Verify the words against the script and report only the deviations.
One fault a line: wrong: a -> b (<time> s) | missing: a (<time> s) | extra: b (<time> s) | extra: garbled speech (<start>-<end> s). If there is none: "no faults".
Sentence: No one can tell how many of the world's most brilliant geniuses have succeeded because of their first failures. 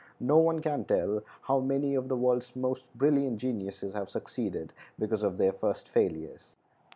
no faults